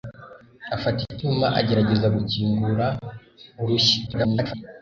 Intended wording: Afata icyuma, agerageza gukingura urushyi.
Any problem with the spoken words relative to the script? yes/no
yes